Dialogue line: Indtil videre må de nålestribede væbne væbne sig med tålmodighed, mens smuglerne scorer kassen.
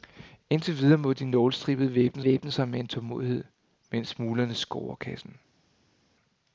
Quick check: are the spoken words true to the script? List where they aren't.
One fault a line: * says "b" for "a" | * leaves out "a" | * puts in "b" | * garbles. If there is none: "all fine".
all fine